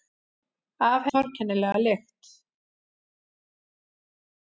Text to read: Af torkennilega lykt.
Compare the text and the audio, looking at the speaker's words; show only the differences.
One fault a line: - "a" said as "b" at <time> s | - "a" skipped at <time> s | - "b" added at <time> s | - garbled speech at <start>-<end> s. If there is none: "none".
none